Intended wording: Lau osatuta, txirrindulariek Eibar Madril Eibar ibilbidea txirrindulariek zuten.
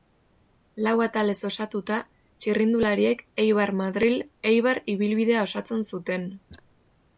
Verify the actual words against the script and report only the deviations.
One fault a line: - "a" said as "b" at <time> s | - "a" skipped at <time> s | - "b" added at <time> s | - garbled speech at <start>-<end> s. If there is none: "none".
- "atalez" added at 1.1 s
- "txirrindulariek" said as "osatzen" at 5.5 s